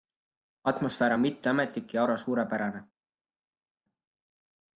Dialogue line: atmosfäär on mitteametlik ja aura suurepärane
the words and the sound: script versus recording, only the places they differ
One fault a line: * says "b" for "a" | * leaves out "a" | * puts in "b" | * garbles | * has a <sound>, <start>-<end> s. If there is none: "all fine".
all fine